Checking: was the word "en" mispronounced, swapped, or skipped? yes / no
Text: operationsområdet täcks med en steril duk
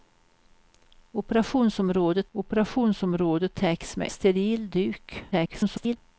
yes